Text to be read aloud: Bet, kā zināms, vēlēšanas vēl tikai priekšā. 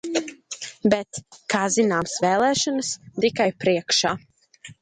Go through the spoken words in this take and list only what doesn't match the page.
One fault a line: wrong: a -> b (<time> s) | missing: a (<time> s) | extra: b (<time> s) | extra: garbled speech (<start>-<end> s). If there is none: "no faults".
missing: vēl (2.9 s)